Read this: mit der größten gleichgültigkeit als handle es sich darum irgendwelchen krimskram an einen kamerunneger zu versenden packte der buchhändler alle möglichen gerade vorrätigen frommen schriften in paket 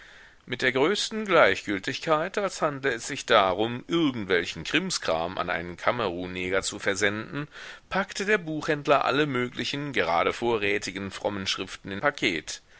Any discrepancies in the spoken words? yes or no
no